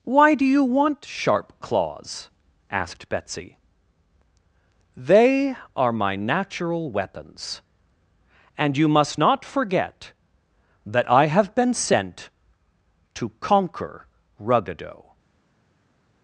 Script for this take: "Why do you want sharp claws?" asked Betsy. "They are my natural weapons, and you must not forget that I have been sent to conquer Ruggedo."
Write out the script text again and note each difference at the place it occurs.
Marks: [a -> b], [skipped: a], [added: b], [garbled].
"Why do you want sharp claws?" asked Betsy. "They are my natural weapons, and you must not forget that I have been sent to conquer Ruggedo."